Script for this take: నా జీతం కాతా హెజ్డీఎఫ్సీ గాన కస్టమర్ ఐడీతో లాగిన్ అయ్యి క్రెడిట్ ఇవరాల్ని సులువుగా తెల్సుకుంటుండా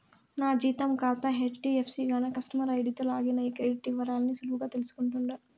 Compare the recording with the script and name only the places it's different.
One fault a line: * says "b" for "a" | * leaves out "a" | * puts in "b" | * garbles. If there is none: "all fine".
all fine